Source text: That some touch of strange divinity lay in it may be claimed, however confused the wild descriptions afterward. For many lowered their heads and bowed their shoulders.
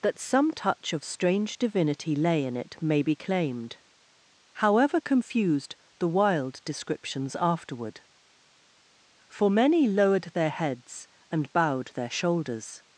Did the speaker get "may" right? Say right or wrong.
right